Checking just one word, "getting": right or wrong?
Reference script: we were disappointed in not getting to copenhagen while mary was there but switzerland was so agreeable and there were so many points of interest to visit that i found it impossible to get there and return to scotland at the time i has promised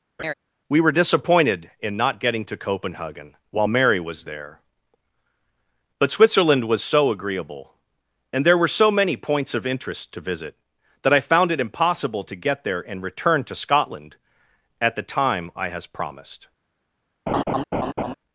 right